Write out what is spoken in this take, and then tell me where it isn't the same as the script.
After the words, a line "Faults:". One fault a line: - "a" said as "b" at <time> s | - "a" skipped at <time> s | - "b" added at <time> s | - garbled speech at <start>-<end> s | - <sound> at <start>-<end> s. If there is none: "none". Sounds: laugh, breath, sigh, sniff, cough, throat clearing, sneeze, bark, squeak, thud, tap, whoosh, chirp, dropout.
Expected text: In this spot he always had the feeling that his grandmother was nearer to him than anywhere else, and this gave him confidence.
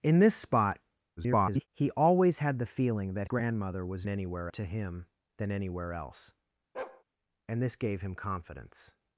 In this spot [garbled] he always had the feeling that grandmother was anywhere to him than anywhere else, and this gave him confidence.
Faults:
- garbled speech at 1.2-1.7 s
- "his" skipped at 3.3 s
- "nearer" said as "anywhere" at 4.1 s
- bark at 6.7-7.0 s